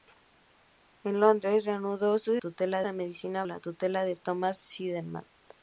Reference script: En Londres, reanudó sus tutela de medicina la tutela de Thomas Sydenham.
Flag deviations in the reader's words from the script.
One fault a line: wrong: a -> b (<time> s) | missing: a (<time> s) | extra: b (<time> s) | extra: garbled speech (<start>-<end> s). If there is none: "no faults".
no faults